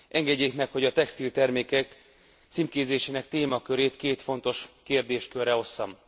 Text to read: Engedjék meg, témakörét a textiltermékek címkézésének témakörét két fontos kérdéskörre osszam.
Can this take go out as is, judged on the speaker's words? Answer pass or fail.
fail